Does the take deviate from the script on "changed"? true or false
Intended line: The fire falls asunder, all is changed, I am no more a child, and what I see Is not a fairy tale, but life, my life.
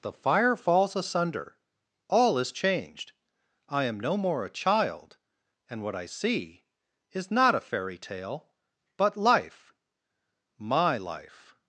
false